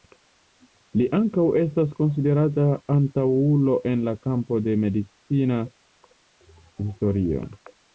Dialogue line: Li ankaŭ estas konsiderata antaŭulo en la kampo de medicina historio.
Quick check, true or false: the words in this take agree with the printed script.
true